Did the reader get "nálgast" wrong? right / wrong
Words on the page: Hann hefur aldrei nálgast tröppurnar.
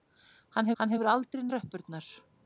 wrong